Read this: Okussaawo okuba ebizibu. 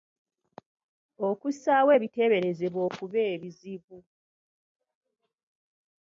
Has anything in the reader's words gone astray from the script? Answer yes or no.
yes